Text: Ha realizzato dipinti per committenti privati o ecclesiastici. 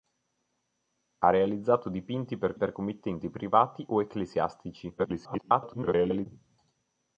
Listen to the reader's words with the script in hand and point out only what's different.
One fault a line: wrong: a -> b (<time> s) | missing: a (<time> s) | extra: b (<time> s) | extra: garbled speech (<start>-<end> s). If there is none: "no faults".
extra: per (2.5 s)
extra: garbled speech (5.0-6.3 s)